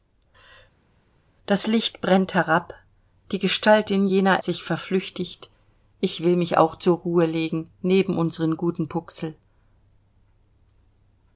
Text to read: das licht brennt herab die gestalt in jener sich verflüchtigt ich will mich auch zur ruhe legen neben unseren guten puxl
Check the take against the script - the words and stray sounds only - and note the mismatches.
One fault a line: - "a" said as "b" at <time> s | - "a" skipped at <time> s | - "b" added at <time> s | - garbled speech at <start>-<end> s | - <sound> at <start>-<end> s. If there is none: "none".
none